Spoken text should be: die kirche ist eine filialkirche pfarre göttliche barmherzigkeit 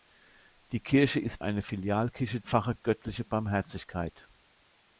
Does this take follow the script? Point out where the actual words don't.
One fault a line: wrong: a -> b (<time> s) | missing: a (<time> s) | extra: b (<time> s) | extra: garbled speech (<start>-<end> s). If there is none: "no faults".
no faults